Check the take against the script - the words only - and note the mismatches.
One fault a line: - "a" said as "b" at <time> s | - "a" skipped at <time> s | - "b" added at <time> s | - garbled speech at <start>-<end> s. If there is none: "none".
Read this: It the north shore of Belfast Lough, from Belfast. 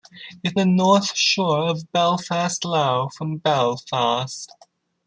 none